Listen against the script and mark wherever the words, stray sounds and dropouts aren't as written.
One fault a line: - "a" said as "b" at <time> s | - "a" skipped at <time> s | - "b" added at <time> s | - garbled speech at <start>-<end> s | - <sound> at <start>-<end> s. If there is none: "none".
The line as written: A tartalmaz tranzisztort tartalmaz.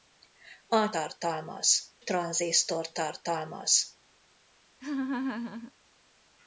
- laugh at 4.8-5.7 s